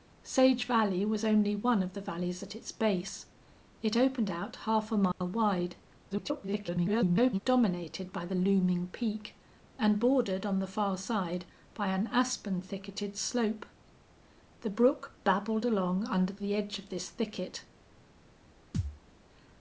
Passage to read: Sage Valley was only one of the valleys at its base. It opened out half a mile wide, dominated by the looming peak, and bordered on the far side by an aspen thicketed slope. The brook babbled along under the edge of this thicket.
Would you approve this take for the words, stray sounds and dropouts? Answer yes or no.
no